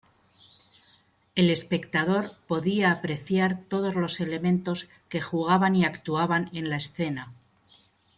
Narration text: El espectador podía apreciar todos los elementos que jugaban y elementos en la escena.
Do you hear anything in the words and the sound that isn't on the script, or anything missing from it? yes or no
yes